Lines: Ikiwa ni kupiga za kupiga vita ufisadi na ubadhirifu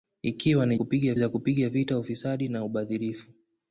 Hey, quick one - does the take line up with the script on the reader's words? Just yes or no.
yes